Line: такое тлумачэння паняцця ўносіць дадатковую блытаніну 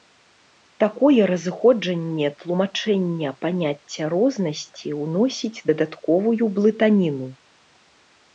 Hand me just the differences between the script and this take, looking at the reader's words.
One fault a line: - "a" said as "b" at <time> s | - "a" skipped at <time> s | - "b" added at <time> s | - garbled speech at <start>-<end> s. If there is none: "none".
- "разыходжанне" added at 1.3 s
- "рознасці" added at 4.2 s